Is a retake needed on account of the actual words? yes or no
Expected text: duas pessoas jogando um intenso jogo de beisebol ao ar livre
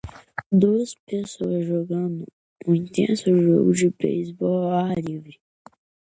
no